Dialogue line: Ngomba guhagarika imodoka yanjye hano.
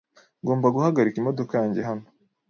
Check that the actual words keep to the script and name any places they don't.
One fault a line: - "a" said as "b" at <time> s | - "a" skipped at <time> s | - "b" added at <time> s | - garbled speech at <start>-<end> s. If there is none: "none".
none